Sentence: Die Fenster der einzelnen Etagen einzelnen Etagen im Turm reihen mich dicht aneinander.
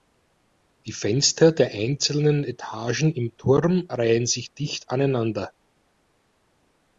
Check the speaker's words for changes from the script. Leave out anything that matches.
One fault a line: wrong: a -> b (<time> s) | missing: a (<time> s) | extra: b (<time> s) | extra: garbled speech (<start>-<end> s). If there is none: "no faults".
missing: einzelnen Etagen (3.1 s)
wrong: mich -> sich (4.3 s)